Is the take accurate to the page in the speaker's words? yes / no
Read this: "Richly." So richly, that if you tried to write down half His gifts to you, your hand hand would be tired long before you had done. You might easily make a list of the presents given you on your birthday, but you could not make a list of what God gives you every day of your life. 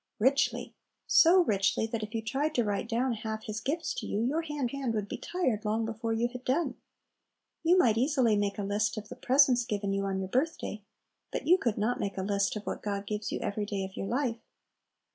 yes